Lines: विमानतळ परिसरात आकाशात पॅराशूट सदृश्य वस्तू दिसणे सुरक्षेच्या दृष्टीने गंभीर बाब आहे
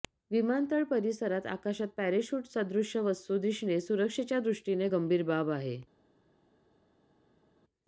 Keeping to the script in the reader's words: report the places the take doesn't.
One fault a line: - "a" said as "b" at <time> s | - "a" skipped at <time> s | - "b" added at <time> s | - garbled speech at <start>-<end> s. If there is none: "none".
none